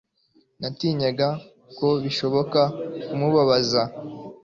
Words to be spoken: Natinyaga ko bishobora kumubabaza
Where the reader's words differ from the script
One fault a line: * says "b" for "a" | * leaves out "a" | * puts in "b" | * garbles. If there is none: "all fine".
all fine